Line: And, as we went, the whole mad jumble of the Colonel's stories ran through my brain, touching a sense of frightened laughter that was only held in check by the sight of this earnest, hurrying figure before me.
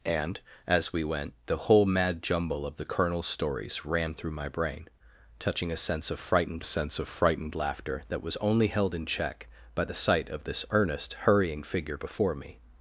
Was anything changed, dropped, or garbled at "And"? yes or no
no